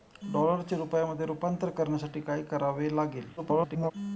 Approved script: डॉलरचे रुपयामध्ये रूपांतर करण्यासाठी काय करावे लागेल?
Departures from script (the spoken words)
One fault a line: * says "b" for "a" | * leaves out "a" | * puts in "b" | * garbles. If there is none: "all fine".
* garbles